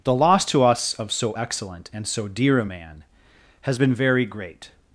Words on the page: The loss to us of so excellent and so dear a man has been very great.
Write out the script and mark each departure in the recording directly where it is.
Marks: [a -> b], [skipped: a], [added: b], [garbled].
The loss to us of so excellent and so dear a man has been very great.